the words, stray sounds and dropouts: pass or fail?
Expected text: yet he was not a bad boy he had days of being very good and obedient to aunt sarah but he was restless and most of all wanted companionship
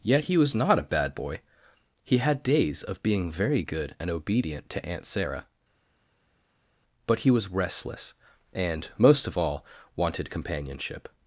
pass